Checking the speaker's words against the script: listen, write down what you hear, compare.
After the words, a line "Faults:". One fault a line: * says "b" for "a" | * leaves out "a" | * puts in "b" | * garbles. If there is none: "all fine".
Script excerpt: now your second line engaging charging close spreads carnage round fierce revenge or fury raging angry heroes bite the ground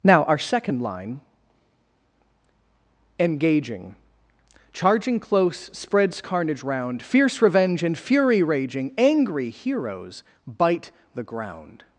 now our second line engaging charging close spreads carnage round fierce revenge and fury raging angry heroes bite the ground
Faults:
* says "our" for "your"
* says "and" for "or"